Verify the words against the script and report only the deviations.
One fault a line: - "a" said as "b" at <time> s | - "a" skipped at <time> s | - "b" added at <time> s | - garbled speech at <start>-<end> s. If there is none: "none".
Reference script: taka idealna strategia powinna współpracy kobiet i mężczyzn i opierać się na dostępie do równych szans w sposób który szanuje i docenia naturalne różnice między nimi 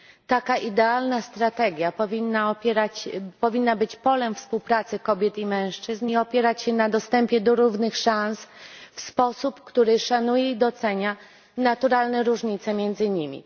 - "być polem" added at 3.8 s